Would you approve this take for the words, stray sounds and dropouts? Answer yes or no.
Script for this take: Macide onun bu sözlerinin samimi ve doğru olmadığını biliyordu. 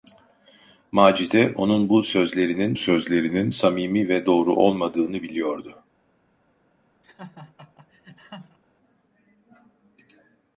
no